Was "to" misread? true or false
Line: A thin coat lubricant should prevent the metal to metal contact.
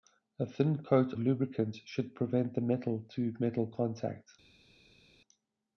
false